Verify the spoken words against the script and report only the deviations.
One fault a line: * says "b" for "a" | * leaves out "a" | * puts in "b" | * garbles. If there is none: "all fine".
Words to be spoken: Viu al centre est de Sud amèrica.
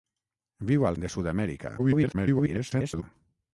* leaves out "centre est"
* garbles